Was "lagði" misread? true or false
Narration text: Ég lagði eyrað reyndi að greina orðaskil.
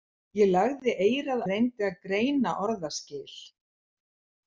false